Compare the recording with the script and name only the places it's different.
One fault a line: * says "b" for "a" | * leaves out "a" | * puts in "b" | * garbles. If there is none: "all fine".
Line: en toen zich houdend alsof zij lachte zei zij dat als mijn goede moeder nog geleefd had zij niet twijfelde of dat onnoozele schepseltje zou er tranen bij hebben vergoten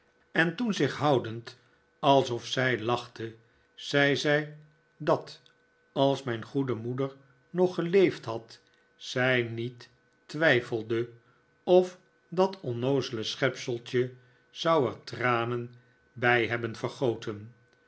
all fine